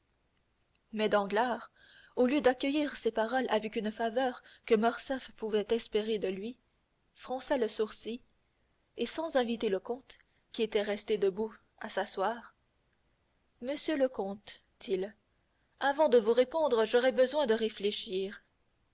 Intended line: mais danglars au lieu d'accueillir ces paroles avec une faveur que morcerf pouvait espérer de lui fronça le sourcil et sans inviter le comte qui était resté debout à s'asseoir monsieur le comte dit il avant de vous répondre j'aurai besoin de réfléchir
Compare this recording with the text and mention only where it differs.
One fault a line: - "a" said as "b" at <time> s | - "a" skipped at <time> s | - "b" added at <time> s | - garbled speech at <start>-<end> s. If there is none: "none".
- "dit" skipped at 14.6 s